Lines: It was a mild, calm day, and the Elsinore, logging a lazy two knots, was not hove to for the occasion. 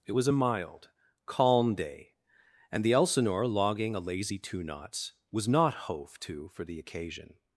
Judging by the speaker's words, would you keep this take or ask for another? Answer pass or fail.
pass